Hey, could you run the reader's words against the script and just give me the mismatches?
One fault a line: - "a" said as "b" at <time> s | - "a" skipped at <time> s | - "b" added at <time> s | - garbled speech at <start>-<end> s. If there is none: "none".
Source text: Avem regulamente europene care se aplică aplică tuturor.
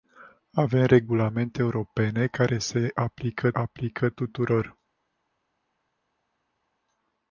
none